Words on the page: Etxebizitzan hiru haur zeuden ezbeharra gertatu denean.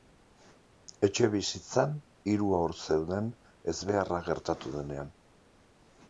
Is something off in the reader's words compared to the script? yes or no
no